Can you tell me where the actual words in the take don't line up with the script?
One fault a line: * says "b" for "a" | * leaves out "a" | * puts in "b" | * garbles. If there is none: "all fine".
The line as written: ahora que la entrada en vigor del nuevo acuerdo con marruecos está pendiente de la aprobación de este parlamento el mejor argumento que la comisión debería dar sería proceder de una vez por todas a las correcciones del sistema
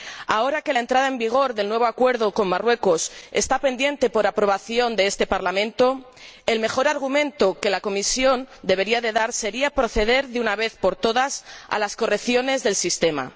all fine